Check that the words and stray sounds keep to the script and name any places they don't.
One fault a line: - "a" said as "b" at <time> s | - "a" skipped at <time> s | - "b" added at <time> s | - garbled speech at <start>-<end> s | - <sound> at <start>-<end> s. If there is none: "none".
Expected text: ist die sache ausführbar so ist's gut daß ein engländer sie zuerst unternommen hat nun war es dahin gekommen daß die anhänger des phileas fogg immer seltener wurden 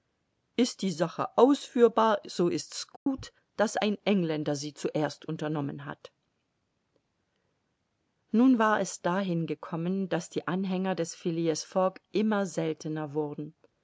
- dropout at 3.0-3.1 s